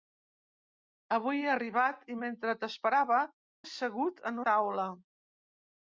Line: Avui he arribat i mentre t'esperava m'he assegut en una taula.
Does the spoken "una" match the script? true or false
false